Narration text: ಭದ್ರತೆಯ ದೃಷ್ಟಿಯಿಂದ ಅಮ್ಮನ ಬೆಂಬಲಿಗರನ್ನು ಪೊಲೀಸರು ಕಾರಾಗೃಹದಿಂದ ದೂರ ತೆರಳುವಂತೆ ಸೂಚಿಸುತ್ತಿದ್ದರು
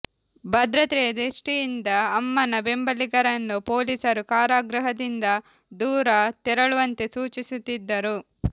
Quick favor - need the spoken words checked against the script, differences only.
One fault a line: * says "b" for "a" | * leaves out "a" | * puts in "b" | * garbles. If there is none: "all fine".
all fine